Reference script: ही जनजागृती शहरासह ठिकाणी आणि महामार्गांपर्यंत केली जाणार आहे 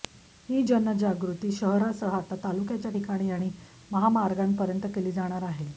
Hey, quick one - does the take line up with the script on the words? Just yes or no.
no